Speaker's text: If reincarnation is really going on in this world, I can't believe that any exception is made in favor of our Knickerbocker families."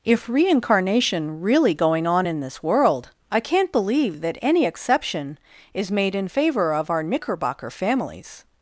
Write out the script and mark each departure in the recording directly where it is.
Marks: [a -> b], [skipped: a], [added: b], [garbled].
If reincarnation [skipped: is] really going on in this world, I can't believe that any exception is made in favor of our Knickerbocker families."